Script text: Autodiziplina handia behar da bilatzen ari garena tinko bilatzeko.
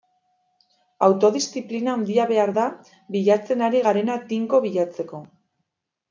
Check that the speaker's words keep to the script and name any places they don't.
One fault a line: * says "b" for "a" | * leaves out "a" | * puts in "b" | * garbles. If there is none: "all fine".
all fine